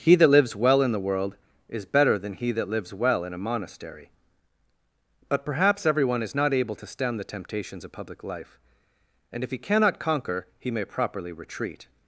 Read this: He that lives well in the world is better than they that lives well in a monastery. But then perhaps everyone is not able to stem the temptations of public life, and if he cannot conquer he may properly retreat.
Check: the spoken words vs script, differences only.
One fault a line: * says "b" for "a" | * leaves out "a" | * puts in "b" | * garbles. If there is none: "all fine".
* says "he" for "they"
* leaves out "then"